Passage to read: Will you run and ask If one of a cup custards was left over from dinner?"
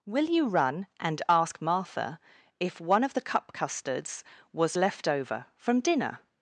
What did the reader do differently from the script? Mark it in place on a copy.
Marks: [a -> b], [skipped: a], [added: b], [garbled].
Will you run and ask [added: Martha] If one of [a -> the] cup custards was left over from dinner?"